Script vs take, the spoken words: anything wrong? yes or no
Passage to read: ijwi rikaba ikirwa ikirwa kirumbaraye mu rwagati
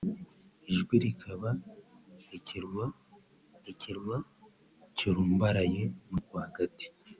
no